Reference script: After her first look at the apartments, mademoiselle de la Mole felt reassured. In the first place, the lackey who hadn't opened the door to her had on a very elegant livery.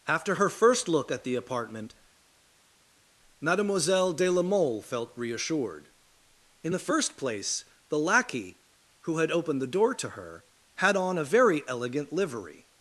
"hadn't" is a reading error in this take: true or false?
true